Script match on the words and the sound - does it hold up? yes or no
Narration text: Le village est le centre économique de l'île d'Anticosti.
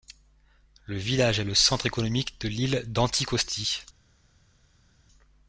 yes